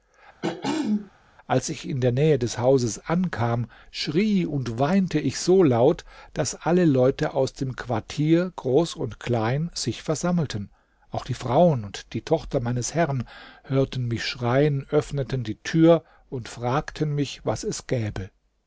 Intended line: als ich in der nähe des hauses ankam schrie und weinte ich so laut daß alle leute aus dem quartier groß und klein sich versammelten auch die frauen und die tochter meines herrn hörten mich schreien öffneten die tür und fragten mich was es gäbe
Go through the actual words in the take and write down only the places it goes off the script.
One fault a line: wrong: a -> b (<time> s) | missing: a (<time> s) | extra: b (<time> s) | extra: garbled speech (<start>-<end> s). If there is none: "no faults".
no faults